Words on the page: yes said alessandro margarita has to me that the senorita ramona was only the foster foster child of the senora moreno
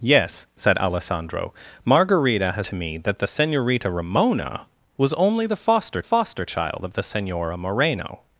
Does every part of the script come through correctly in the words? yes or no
yes